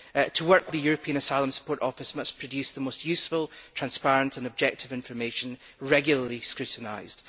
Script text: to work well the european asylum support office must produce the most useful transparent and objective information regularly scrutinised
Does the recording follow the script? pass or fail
fail